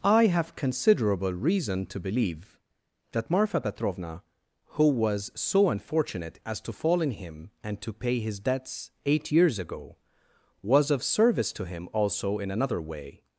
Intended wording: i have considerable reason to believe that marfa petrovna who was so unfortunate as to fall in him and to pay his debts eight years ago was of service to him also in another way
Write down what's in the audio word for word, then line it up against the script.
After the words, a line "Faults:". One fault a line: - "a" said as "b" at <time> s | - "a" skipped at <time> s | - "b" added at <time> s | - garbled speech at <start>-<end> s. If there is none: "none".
i have considerable reason to believe that marfa petrovna who was so unfortunate as to fall in him and to pay his debts eight years ago was of service to him also in another way
Faults:
none